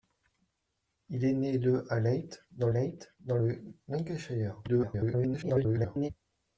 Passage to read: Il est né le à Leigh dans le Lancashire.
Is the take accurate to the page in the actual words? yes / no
no